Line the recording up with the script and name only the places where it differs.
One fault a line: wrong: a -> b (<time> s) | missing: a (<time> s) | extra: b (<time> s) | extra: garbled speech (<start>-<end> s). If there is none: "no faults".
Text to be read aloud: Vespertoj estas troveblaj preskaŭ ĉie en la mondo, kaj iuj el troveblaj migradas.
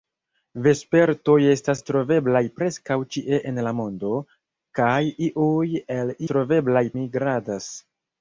no faults